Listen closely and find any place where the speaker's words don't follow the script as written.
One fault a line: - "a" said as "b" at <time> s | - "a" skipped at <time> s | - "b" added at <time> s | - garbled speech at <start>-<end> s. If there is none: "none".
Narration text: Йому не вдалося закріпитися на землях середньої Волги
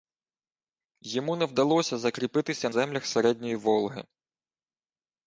- "на" skipped at 2.7 s